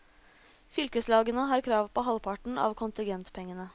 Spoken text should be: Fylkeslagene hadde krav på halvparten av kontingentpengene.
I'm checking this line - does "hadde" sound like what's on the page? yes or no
no